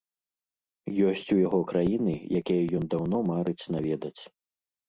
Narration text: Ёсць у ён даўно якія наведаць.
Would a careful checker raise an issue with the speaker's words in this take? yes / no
yes